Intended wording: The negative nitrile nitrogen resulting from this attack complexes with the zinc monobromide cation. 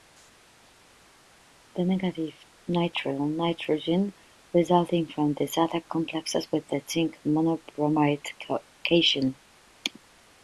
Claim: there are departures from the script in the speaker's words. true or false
false